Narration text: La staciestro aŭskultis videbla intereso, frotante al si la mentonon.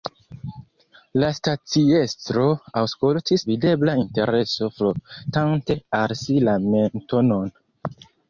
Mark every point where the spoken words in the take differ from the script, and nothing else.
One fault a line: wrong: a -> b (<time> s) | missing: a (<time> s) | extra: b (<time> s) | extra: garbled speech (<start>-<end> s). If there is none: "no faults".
no faults